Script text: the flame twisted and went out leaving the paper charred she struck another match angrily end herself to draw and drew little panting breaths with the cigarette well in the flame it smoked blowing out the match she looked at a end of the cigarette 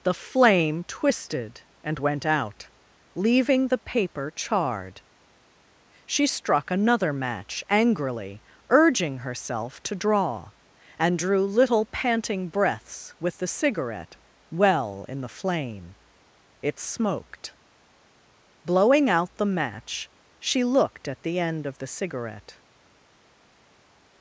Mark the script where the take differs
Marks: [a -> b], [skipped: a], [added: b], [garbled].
the flame twisted and went out leaving the paper charred she struck another match angrily [end -> urging] herself to draw and drew little panting breaths with the cigarette well in the flame it smoked blowing out the match she looked at [a -> the] end of the cigarette